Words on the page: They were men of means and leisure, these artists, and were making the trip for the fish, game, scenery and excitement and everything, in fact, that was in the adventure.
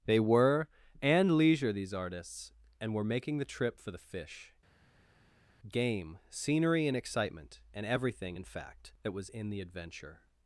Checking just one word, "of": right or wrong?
wrong